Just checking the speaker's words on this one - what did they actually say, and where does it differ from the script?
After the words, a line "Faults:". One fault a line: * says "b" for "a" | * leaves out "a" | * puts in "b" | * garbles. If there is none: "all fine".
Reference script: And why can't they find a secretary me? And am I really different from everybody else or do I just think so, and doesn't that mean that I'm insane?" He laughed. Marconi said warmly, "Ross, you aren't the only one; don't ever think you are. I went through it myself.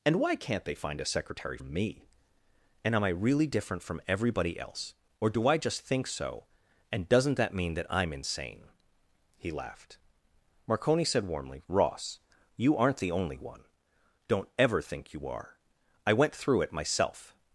And why can't they find a secretary me? And am I really different from everybody else or do I just think so, and doesn't that mean that I'm insane?" He laughed. Marconi said warmly, "Ross, you aren't the only one; don't ever think you are. I went through it myself.
Faults:
all fine